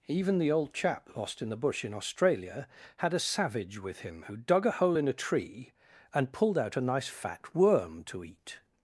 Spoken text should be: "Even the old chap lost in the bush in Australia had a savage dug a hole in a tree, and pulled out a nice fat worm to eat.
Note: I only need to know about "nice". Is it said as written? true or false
true